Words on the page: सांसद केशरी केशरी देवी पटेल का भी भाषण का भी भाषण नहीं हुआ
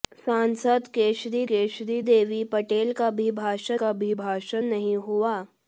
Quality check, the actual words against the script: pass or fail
pass